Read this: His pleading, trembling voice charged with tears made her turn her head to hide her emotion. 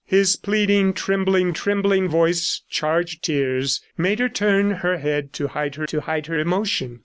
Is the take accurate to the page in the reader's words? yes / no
no